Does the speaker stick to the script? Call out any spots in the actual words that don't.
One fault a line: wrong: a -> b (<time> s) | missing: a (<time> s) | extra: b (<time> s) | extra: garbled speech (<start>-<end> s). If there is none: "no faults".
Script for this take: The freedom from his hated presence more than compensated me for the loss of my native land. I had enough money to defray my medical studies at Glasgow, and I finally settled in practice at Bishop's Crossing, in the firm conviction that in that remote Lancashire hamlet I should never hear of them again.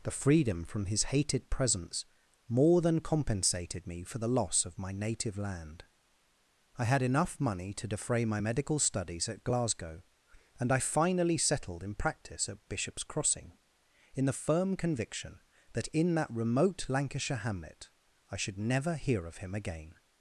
wrong: them -> him (19.4 s)